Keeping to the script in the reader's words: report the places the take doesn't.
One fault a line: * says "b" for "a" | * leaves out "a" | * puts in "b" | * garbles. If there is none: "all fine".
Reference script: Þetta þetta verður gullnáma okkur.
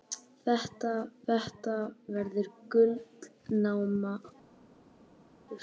all fine